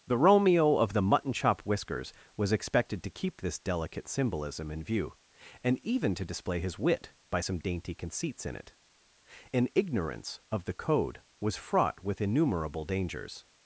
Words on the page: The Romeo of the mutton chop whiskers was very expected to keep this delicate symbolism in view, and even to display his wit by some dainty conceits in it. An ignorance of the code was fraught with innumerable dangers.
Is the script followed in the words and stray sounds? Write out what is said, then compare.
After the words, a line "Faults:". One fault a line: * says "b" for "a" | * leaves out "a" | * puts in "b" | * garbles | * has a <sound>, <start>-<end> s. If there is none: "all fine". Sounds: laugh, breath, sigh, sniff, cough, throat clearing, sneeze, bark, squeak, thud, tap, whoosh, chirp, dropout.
The Romeo of the mutton chop whiskers was expected to keep this delicate symbolism in view, and even to display his wit by some dainty conceits in it. An ignorance of the code was fraught with innumerable dangers.
Faults:
* leaves out "very"